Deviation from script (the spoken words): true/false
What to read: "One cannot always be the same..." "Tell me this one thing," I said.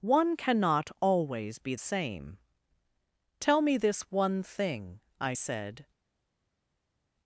true